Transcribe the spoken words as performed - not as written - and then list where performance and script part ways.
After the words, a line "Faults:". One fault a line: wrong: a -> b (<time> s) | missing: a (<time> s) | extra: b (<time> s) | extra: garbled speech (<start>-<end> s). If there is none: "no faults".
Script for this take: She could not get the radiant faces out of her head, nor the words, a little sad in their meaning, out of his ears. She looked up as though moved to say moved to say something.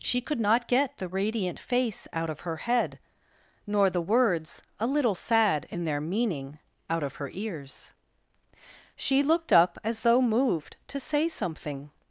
She could not get the radiant face out of her head, nor the words, a little sad in their meaning, out of her ears. She looked up as though moved to say something.
Faults:
wrong: faces -> face (1.6 s)
wrong: his -> her (7.2 s)
missing: moved to say (11.3 s)